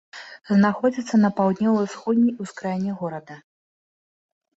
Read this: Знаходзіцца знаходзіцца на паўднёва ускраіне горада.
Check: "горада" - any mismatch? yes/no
no